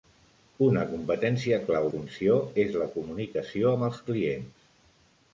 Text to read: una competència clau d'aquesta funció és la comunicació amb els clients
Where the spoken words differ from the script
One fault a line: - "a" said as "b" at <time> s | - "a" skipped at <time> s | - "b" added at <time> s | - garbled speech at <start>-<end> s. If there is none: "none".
- "d'aquesta" skipped at 1.9 s